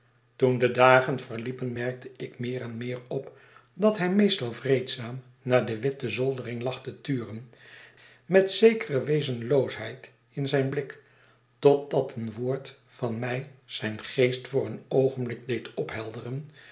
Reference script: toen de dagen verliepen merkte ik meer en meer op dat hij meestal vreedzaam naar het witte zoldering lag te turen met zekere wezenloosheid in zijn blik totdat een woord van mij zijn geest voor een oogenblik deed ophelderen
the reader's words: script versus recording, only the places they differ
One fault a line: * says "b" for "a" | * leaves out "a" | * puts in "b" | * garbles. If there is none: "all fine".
* says "de" for "het"